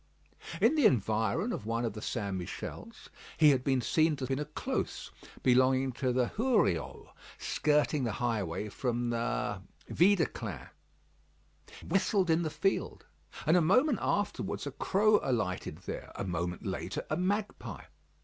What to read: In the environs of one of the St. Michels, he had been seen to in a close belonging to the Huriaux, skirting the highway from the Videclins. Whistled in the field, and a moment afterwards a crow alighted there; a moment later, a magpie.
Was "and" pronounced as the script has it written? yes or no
yes